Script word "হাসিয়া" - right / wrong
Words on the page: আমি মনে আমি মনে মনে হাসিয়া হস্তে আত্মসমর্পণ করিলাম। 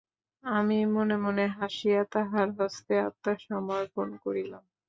wrong